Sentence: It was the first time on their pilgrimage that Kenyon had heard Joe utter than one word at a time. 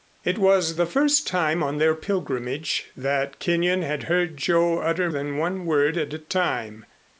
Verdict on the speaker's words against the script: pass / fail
pass